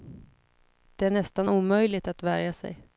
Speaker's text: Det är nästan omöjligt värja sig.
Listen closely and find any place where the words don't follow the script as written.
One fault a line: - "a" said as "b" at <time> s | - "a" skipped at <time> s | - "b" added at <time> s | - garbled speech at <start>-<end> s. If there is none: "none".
- "att" added at 2.1 s